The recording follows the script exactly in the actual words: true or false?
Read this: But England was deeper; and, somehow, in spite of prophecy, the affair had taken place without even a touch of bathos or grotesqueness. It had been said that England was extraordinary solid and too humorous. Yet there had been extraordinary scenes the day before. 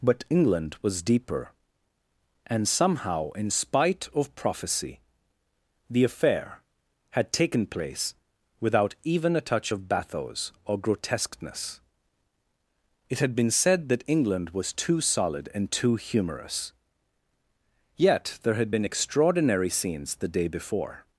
false